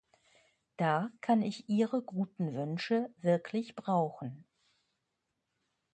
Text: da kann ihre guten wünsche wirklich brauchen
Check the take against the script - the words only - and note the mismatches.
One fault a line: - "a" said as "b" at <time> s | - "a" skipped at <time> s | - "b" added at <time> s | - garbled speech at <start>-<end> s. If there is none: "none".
- "ich" added at 1.4 s